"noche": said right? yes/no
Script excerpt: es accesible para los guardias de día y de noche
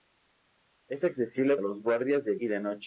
yes